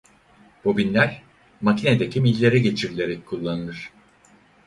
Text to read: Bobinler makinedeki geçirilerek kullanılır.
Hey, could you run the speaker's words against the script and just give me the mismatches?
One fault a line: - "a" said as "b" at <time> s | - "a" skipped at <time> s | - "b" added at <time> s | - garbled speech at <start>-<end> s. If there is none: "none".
- "millere" added at 2.2 s